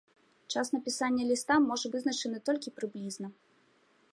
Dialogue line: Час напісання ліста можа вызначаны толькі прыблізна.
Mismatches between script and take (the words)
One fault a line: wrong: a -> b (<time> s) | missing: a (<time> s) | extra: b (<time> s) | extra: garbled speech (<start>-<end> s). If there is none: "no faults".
no faults